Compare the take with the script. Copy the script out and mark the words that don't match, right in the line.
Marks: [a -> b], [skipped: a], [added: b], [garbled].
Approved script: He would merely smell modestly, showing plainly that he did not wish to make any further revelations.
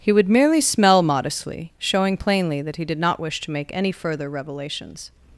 He would merely smell modestly, showing plainly that he did not wish to make any further revelations.